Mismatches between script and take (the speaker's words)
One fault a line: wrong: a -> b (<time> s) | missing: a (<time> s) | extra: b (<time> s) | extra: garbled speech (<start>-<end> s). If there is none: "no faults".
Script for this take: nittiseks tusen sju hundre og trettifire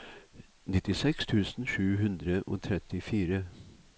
no faults